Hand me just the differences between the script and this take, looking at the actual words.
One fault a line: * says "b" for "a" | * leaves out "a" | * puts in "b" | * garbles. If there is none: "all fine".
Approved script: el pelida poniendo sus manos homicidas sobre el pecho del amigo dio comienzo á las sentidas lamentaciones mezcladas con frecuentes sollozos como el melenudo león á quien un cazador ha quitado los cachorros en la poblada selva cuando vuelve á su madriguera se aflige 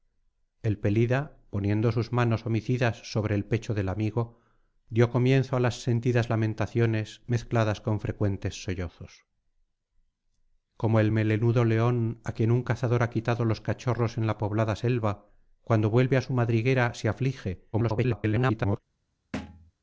* garbles